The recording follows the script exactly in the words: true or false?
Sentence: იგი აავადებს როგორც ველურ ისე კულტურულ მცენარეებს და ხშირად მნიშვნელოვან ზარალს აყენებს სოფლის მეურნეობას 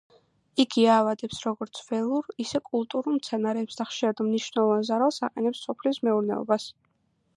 true